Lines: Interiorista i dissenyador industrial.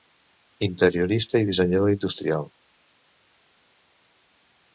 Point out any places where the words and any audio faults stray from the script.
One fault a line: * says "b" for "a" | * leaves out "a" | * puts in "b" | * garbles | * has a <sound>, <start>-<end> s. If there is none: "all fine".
all fine